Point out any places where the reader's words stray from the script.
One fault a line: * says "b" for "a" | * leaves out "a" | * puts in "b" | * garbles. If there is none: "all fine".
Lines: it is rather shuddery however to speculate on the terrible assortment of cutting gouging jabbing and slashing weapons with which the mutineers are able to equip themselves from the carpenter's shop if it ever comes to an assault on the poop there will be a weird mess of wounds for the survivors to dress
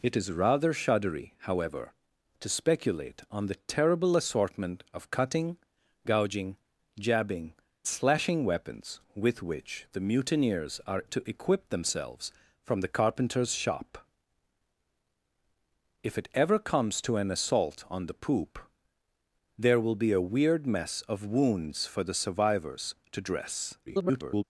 * leaves out "and"
* leaves out "able"
* garbles